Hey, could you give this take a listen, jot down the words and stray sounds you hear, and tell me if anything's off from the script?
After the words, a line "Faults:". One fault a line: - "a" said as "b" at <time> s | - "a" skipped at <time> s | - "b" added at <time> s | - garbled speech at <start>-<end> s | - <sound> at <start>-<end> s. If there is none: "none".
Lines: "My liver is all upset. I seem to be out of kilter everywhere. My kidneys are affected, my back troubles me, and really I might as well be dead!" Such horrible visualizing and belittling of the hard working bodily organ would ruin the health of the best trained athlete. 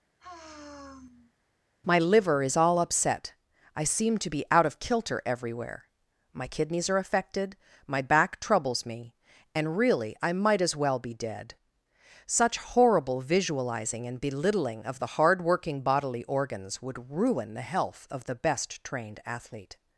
"My liver is all upset. I seem to be out of kilter everywhere. My kidneys are affected, my back troubles me, and really I might as well be dead!" Such horrible visualizing and belittling of the hard working bodily organs would ruin the health of the best trained athlete.
Faults:
- sigh at 0.2-1.3 s
- "organ" said as "organs" at 16.2 s